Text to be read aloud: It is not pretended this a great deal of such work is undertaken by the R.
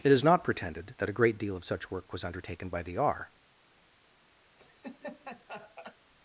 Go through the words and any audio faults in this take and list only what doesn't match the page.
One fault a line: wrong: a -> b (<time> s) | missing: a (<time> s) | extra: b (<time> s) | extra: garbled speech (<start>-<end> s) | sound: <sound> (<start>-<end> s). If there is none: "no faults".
wrong: this -> that (1.0 s)
wrong: is -> was (2.1 s)
sound: laugh (4.6-6.0 s)